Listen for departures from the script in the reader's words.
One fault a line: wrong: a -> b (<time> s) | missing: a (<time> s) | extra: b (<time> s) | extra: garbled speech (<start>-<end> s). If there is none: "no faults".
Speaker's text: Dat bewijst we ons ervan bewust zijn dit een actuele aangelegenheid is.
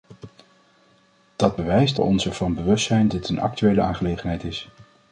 no faults